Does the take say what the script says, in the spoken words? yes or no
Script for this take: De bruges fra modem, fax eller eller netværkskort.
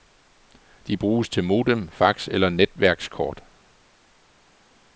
no